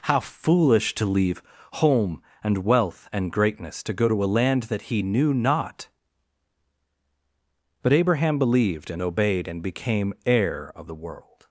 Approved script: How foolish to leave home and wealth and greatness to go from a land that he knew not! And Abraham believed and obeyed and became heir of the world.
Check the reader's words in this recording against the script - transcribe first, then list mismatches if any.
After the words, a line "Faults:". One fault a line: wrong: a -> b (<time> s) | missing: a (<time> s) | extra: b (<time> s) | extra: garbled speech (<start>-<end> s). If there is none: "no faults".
How foolish to leave home and wealth and greatness to go to a land that he knew not! But Abraham believed and obeyed and became heir of the world.
Faults:
wrong: from -> to (4.1 s)
wrong: And -> But (7.8 s)